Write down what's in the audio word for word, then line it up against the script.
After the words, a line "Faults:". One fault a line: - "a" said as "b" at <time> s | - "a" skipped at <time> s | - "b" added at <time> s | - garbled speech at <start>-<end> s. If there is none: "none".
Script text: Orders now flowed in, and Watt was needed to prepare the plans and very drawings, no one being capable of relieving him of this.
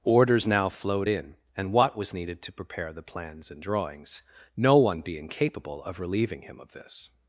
Orders now flowed in, and Watt was needed to prepare the plans and drawings, no one being capable of relieving him of this.
Faults:
- "very" skipped at 3.6 s